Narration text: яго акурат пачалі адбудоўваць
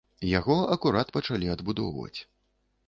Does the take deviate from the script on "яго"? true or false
false